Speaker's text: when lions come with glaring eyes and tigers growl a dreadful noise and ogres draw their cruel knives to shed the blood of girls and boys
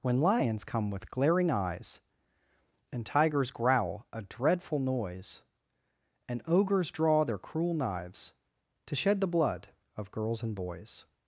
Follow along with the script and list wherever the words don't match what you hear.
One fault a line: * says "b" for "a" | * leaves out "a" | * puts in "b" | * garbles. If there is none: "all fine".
all fine